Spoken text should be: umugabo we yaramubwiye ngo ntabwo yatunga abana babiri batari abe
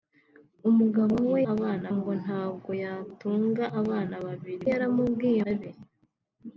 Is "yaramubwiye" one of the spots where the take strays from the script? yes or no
yes